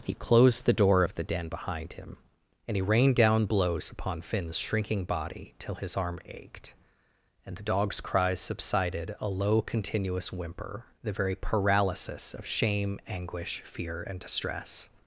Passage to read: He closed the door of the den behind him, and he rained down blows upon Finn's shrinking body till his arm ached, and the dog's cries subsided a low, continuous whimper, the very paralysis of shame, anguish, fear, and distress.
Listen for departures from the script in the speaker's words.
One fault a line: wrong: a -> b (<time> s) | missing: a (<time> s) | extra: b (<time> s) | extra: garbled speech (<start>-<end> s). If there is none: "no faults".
no faults